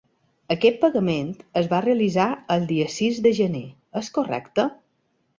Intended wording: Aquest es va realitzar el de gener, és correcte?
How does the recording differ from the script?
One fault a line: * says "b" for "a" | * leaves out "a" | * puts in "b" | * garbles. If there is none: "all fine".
* puts in "pagament"
* puts in "dia sis"